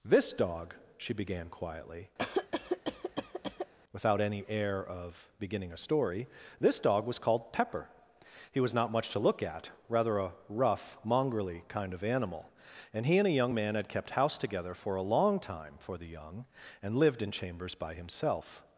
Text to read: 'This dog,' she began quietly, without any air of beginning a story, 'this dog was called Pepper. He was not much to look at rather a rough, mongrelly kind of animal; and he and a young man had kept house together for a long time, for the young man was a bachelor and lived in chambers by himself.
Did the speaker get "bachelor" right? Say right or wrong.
wrong